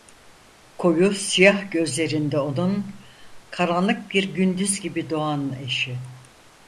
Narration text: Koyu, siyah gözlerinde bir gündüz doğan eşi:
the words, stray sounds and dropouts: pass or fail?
fail